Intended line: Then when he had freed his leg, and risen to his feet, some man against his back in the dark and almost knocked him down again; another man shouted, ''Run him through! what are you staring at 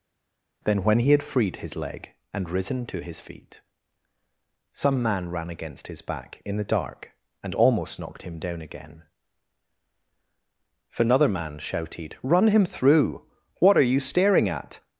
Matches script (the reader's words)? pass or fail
fail